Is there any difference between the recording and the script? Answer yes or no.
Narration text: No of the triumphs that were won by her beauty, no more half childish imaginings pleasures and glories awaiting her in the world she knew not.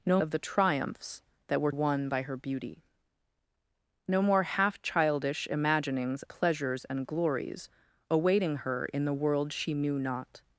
no